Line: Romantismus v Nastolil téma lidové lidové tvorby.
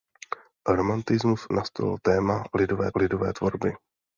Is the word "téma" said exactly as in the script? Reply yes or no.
yes